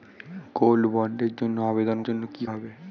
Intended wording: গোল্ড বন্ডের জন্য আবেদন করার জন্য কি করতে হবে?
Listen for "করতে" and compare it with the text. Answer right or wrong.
wrong